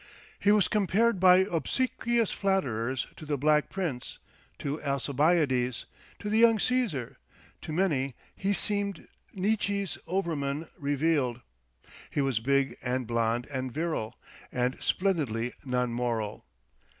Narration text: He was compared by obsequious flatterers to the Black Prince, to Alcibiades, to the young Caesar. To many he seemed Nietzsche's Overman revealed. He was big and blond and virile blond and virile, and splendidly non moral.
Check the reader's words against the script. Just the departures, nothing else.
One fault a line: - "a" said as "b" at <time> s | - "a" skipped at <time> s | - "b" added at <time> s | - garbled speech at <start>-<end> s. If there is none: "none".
- "blond and virile" skipped at 14.2 s